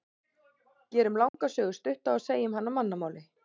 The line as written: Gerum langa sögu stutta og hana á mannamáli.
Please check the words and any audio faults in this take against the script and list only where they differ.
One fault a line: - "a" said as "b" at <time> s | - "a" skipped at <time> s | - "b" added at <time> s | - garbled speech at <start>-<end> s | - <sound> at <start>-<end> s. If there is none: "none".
- dropout at 1.3-1.3 s
- "segjum" added at 2.3 s